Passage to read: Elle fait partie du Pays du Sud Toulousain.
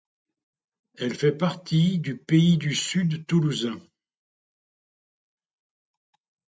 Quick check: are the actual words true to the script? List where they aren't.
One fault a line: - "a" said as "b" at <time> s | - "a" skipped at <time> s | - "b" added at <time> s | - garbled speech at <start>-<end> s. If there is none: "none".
none